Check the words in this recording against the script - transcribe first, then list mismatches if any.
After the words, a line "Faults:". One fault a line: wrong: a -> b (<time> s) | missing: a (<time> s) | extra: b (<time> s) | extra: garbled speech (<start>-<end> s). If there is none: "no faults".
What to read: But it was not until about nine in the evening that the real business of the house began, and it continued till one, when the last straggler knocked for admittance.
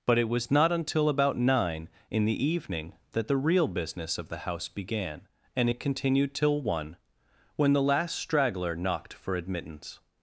But it was not until about nine in the evening that the real business of the house began, and it continued till one, when the last straggler knocked for admittance.
Faults:
no faults